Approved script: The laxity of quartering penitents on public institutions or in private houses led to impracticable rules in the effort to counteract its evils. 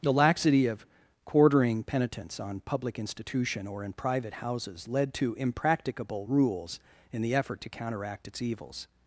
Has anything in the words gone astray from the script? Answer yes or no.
yes